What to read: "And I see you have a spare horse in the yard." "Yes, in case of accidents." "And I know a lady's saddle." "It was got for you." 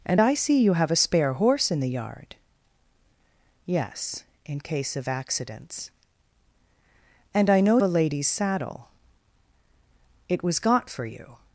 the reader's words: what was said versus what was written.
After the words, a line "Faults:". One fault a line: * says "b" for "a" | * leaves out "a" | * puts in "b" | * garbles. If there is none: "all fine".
"And I see you have a spare horse in the yard." "Yes, in case of accidents." "And I know a lady's saddle." "It was got for you."
Faults:
all fine